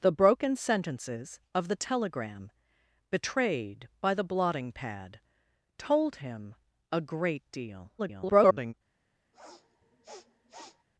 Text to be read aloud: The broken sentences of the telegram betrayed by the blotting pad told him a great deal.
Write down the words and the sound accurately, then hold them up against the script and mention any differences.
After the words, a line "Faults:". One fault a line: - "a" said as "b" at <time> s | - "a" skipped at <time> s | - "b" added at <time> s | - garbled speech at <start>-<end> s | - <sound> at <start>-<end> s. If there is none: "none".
The broken sentences of the telegram betrayed by the blotting pad told him a great deal. [garbled]
Faults:
- garbled speech at 8.0-8.7 s
- sniff at 9.3-10.8 s